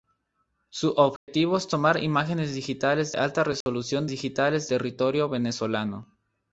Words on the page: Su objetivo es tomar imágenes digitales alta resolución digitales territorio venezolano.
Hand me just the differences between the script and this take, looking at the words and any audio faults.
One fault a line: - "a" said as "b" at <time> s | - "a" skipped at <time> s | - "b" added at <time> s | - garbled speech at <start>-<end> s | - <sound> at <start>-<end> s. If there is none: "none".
- dropout at 1.2-1.3 s
- dropout at 3.6-3.7 s